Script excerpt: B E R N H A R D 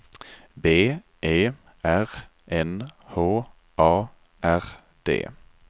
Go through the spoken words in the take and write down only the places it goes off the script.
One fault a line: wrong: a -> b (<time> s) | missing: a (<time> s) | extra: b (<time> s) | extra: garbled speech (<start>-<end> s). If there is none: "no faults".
no faults